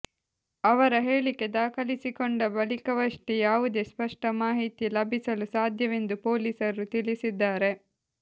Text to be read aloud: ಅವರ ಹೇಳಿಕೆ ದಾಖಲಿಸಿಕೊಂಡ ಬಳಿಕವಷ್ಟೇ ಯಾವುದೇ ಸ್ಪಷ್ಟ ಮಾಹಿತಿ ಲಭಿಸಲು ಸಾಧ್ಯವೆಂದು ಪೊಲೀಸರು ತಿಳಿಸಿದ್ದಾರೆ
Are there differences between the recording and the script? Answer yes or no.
no